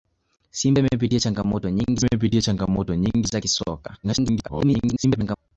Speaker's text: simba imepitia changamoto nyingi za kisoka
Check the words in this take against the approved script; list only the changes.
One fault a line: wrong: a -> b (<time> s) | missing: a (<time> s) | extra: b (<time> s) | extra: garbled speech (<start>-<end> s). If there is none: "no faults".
extra: imepitia changamoto nyingi (2.0 s)
extra: garbled speech (4.0-5.4 s)